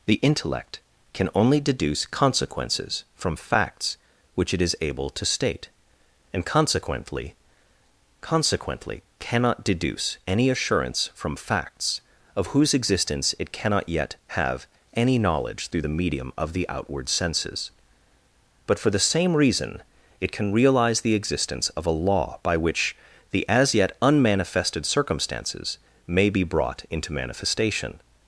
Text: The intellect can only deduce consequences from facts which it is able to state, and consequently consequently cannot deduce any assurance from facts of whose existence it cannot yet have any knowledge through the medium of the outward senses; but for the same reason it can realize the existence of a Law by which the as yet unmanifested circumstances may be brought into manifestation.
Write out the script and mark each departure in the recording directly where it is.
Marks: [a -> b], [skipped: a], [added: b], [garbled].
The intellect can only deduce consequences from facts which it is able to state, and consequently consequently cannot deduce any assurance from facts of whose existence it cannot yet have any knowledge through the medium of the outward senses; but for the same reason it can realize the existence of a Law by which the as yet unmanifested circumstances may be brought into manifestation.